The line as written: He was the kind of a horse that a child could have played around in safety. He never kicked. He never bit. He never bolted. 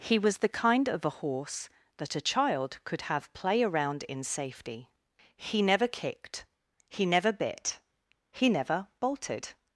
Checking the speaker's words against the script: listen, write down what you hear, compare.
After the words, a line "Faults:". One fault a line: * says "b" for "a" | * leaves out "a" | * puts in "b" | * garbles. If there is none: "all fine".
He was the kind of a horse that a child could have play around in safety. He never kicked. He never bit. He never bolted.
Faults:
* says "play" for "played"